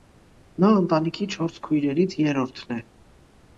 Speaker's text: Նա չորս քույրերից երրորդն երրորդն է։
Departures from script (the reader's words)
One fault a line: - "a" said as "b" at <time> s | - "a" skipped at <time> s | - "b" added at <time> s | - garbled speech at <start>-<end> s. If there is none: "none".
- "ընտանիքի" added at 0.8 s
- "երրորդն" skipped at 2.8 s